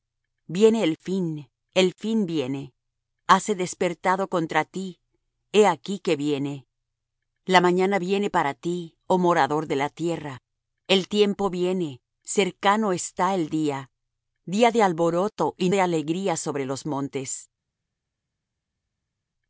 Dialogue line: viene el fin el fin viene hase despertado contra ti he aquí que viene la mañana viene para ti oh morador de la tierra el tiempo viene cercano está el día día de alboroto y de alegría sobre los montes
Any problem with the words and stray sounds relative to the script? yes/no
no